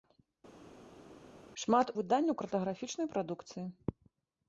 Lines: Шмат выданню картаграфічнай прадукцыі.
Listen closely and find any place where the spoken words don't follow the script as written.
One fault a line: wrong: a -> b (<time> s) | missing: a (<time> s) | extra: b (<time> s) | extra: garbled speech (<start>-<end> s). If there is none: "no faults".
no faults